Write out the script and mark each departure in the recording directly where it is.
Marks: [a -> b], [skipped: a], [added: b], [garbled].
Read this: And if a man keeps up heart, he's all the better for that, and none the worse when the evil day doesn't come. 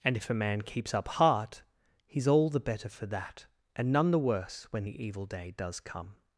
And if a man keeps up heart, he's all the better for that, and none the worse when the evil day [doesn't -> does] come.